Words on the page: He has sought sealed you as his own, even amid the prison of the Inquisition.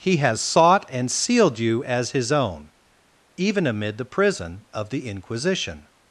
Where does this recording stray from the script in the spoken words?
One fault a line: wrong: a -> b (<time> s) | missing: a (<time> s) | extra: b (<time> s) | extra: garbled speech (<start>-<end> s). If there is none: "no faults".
extra: and (0.9 s)